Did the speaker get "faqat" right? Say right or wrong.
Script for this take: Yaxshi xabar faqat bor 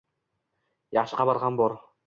wrong